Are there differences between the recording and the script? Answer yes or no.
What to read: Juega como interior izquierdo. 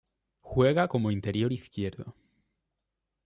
no